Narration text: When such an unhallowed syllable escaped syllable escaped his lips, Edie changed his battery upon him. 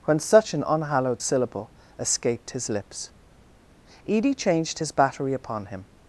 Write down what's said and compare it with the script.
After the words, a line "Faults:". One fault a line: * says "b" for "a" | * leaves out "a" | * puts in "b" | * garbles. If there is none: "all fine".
When such an unhallowed syllable escaped his lips, Edie changed his battery upon him.
Faults:
* leaves out "syllable escaped"